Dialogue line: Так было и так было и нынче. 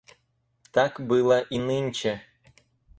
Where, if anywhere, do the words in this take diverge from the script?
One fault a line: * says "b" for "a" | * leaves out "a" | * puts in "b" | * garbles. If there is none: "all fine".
* leaves out "так было и"